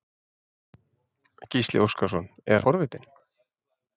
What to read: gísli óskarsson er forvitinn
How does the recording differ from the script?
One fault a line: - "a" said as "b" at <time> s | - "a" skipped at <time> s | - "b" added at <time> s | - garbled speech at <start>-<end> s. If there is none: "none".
none